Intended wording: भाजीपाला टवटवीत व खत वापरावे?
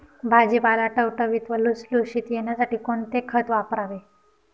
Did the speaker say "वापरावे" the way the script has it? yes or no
yes